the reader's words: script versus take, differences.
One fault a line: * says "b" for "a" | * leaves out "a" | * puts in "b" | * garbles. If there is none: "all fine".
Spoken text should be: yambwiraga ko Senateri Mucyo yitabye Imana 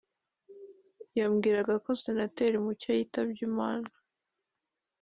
all fine